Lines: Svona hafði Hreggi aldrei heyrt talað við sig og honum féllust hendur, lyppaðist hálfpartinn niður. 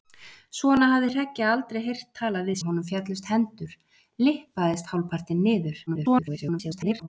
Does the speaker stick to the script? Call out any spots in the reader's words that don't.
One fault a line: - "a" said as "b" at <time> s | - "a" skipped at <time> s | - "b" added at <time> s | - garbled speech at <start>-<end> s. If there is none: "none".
- "sig" skipped at 2.5 s
- garbled speech at 5.9-7.1 s